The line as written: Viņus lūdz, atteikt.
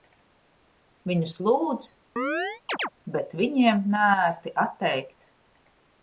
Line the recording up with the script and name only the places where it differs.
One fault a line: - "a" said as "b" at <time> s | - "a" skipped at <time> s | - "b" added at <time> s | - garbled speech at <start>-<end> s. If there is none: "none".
- "bet viņiem neērti" added at 3.1 s